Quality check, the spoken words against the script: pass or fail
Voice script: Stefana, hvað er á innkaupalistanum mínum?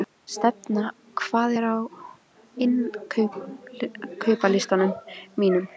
pass